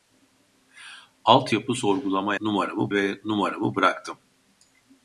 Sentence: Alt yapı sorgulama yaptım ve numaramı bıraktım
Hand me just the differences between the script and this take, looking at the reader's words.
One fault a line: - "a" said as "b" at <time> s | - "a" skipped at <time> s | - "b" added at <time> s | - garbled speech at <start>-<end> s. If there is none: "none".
- "yaptım" said as "numaramı" at 2.4 s